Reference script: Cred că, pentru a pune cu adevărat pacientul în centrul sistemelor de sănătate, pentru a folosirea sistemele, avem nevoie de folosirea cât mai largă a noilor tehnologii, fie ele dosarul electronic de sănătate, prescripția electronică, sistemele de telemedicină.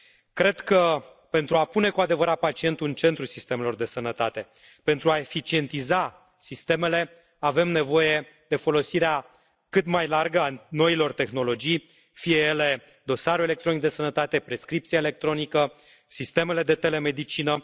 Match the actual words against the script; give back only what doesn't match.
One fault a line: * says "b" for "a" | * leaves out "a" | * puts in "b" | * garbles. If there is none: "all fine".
* says "eficientiza" for "folosirea"